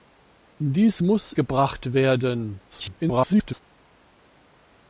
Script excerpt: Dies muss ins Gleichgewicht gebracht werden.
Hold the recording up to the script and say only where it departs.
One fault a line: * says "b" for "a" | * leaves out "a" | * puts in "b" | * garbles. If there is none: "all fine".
* leaves out "ins Gleichgewicht"
* garbles